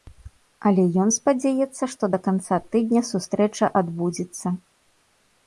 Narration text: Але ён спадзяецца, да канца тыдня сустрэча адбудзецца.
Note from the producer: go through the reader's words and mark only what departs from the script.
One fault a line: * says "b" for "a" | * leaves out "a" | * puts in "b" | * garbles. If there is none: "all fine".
* puts in "што"